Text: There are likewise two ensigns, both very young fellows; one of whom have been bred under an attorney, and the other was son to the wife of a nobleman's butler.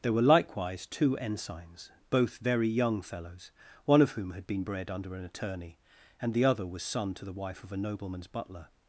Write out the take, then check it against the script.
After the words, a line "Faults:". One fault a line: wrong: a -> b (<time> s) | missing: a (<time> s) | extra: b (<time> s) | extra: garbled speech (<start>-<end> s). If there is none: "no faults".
There were likewise two ensigns, both very young fellows; one of whom had been bred under an attorney, and the other was son to the wife of a nobleman's butler.
Faults:
wrong: are -> were (0.1 s)
wrong: have -> had (4.3 s)